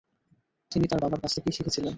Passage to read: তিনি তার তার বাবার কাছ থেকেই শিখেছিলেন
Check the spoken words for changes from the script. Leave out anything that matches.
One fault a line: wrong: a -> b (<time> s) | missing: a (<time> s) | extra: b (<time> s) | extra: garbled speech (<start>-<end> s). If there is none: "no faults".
missing: তার (1.0 s)